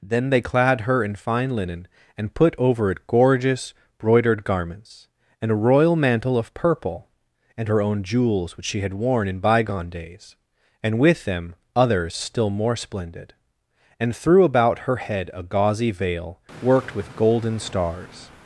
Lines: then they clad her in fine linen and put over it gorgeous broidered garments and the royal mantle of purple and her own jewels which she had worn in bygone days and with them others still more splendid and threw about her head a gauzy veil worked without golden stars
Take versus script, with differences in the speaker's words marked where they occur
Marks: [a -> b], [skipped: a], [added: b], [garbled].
then they clad her in fine linen and put over it gorgeous broidered garments and [the -> a] royal mantle of purple and her own jewels which she had worn in bygone days and with them others still more splendid and threw about her head a gauzy veil worked [without -> with] golden stars